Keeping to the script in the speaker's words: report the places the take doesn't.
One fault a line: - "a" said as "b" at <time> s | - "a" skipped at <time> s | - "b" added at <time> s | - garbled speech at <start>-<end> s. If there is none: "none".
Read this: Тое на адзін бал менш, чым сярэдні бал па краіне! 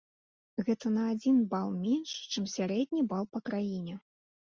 - "Тое" said as "Гэта" at 0.7 s